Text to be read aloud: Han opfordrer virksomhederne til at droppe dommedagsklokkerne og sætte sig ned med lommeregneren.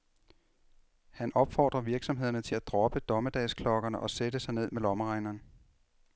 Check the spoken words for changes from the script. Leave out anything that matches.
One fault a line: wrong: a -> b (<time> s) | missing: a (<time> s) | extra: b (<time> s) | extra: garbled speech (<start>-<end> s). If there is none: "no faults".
no faults